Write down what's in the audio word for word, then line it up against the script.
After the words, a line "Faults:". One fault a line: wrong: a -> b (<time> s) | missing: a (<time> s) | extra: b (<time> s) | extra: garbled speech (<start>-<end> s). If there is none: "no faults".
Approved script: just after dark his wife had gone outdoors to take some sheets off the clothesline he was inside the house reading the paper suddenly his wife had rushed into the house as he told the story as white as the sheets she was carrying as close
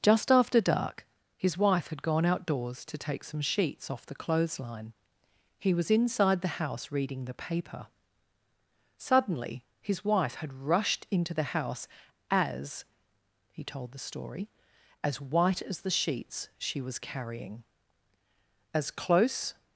just after dark his wife had gone outdoors to take some sheets off the clothesline he was inside the house reading the paper suddenly his wife had rushed into the house as he told the story as white as the sheets she was carrying as close
Faults:
no faults